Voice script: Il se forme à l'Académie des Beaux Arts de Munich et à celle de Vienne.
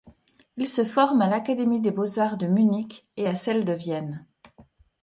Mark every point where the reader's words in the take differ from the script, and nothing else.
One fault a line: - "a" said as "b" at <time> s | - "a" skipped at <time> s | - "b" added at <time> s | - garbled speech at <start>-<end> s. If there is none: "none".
none